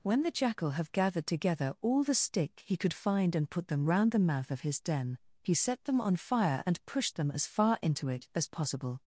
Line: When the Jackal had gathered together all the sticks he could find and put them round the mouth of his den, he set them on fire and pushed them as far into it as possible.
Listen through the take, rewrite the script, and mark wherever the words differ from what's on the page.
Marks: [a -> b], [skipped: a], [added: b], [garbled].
When the Jackal [had -> have] gathered together all the [sticks -> stick] he could find and put them round the mouth of his den, he set them on fire and pushed them as far into it as possible.